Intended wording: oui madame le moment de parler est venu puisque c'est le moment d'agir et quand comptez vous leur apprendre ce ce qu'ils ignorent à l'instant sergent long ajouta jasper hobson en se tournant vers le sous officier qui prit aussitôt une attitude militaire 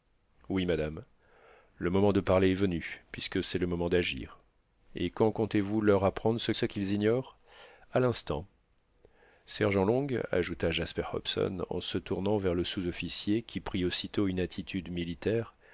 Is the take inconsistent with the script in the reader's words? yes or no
no